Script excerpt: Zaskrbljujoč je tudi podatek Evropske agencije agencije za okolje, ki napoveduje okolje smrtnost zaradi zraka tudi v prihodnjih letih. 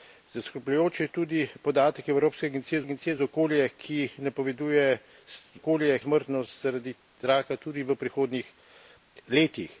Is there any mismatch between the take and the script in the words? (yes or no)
no